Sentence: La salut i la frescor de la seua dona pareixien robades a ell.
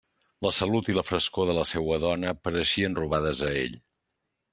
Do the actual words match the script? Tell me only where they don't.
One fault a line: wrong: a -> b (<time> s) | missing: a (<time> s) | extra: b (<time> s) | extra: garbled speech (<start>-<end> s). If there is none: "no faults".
no faults